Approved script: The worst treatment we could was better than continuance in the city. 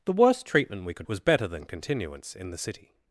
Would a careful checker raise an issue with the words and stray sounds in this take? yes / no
no